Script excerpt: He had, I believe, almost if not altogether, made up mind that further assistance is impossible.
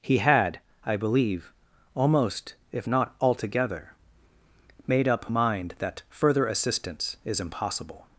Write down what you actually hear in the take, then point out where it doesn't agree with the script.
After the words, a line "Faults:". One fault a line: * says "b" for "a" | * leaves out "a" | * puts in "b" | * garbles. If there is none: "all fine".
He had, I believe, almost if not altogether, made up mind that further assistance is impossible.
Faults:
all fine